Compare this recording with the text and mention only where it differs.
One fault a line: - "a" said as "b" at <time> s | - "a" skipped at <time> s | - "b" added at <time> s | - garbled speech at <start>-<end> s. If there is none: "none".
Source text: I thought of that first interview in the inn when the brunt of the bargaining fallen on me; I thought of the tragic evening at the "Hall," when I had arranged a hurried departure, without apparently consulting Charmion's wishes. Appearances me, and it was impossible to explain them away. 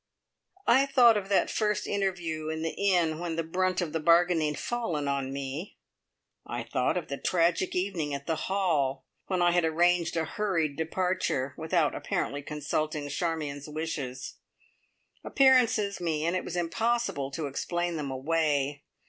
none